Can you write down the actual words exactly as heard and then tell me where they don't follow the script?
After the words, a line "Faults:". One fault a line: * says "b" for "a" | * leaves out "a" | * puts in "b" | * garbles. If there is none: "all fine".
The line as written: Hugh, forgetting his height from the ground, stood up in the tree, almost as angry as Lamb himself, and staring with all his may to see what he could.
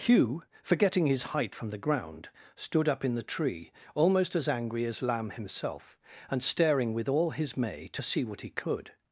Hugh, forgetting his height from the ground, stood up in the tree, almost as angry as Lamb himself, and staring with all his may to see what he could.
Faults:
all fine